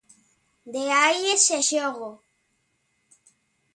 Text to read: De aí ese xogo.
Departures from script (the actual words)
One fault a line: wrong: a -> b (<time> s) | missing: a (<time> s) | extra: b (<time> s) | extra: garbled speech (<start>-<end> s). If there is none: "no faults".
no faults